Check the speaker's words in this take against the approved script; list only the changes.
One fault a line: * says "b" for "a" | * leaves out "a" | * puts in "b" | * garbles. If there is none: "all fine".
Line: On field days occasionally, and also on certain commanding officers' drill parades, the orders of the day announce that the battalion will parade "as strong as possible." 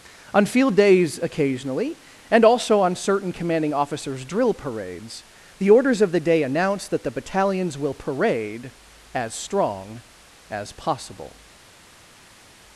* says "battalions" for "battalion"